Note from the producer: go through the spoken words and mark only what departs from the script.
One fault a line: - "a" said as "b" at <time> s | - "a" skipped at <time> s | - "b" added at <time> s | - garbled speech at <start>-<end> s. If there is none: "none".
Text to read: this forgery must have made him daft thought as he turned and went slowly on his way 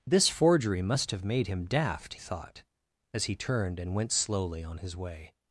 none